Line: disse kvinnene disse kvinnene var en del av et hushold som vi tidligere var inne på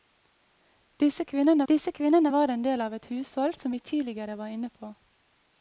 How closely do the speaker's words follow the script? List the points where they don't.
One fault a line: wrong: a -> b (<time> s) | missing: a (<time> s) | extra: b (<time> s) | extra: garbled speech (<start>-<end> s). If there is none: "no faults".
no faults